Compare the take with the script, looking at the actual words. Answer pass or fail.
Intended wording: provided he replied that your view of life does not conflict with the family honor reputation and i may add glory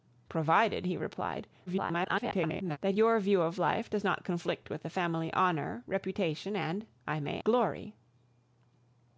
fail